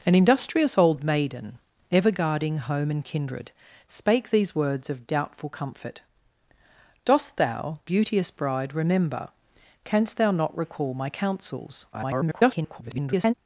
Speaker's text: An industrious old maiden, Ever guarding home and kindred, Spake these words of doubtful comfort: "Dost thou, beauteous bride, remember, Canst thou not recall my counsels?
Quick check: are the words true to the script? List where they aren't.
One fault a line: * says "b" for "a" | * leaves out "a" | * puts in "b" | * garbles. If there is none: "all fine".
* garbles